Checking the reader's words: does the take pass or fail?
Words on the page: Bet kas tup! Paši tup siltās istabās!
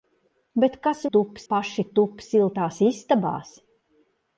pass